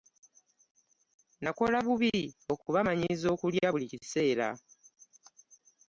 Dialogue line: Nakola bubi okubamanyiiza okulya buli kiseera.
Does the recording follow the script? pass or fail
pass